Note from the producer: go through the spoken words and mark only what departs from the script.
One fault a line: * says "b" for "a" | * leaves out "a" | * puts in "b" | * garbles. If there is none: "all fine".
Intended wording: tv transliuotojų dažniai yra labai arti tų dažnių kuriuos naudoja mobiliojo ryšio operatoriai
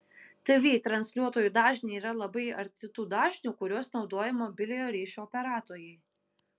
all fine